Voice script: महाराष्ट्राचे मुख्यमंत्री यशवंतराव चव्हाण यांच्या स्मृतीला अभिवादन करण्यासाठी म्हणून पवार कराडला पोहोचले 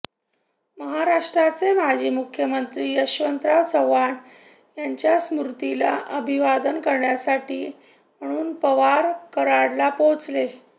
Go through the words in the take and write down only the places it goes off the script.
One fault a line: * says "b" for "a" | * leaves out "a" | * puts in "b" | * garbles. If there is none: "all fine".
* puts in "माजी"